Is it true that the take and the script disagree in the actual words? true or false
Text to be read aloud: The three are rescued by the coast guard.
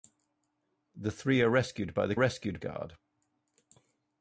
true